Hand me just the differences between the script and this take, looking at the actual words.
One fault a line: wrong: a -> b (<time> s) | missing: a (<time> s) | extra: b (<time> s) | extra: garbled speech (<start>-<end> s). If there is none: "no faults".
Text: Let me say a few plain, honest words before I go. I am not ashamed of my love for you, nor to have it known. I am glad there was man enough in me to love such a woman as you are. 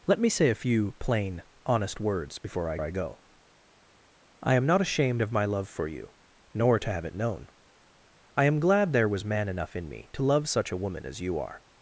extra: I (2.8 s)